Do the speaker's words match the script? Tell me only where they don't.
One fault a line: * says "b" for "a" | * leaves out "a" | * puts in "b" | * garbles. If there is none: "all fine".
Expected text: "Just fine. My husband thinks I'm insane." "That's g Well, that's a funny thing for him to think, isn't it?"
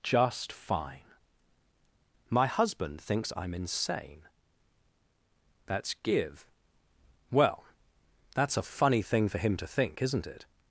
* says "give" for "g"